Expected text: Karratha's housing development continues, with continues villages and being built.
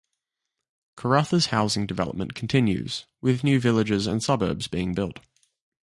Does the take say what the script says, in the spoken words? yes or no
no